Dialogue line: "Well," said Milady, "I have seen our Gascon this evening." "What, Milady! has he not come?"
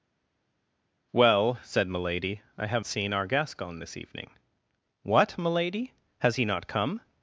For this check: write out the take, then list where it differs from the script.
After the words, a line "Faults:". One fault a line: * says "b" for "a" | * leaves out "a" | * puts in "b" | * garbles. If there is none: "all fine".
"Well," said Milady, "I have seen our Gascon this evening." "What, Milady! has he not come?"
Faults:
all fine